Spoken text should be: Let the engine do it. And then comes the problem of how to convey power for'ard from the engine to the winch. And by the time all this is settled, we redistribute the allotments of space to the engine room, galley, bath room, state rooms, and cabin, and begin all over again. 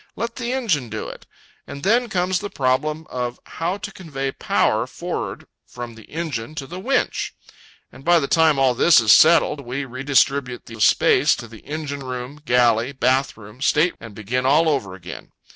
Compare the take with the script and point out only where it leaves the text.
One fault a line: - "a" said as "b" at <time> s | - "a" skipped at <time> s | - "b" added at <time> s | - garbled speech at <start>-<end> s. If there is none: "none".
- "allotments" skipped at 10.8 s
- "rooms and cabin" skipped at 14.0 s